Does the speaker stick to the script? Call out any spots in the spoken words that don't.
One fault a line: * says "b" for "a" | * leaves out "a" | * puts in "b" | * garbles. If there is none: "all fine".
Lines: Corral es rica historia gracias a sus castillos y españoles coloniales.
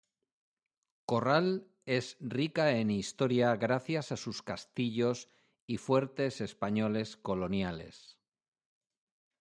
* puts in "en"
* puts in "fuertes"